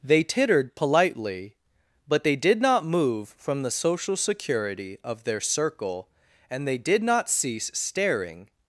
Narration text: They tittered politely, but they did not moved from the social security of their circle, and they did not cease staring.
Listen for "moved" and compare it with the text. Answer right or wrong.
wrong